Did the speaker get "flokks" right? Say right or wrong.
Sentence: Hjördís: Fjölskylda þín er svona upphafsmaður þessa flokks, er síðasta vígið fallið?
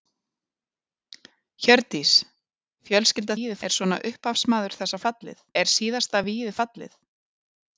wrong